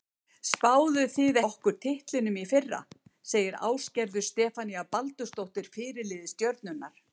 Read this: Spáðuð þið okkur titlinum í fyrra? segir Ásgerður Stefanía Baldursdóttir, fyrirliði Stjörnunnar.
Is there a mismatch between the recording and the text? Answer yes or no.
no